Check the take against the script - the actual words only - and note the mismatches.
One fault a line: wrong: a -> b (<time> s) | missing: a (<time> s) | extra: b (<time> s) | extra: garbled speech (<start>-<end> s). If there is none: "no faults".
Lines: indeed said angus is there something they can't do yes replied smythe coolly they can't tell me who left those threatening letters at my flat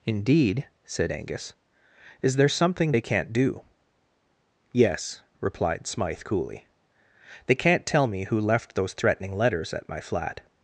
no faults